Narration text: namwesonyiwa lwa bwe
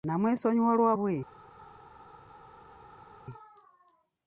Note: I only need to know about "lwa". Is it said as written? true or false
true